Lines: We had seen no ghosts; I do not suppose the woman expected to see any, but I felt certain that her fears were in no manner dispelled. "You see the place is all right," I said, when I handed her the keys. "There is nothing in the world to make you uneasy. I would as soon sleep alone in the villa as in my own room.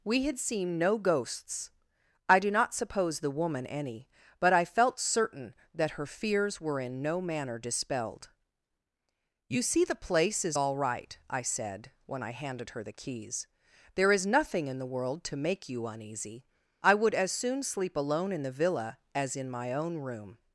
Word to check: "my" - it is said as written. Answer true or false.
true